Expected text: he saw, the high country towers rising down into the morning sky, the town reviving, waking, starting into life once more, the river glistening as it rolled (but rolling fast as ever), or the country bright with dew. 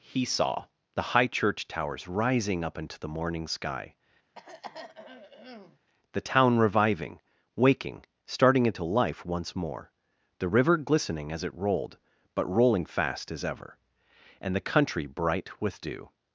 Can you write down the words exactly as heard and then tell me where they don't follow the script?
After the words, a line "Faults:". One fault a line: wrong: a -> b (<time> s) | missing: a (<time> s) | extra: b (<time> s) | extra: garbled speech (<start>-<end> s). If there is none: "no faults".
he saw, the high church towers rising up into the morning sky, the town reviving, waking, starting into life once more, the river glistening as it rolled (but rolling fast as ever), and the country bright with dew.
Faults:
wrong: country -> church (1.3 s)
wrong: down -> up (2.6 s)
wrong: or -> and (14.4 s)